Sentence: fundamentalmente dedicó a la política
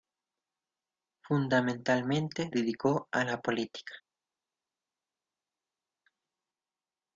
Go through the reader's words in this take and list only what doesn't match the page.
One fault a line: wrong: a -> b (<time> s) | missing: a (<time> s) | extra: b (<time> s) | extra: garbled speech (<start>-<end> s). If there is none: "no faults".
no faults